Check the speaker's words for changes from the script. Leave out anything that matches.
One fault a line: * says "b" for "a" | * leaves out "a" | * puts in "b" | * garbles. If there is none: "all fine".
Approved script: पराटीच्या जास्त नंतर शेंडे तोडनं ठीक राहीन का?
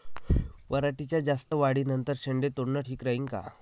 * puts in "वाढी"